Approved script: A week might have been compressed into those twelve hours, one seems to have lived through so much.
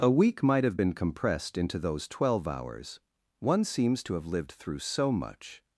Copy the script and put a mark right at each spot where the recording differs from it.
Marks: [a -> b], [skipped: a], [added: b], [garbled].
A week might have been compressed into those twelve hours, one seems to have lived through so much.